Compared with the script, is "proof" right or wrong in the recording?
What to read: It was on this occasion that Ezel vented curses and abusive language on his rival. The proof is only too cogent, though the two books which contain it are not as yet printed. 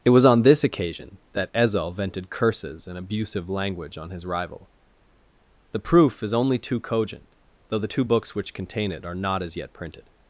right